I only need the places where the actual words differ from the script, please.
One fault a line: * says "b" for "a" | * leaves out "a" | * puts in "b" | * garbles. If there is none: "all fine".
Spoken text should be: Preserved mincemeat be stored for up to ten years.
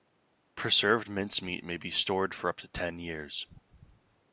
* puts in "may"